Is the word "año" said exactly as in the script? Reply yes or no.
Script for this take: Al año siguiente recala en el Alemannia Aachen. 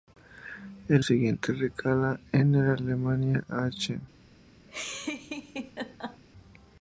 no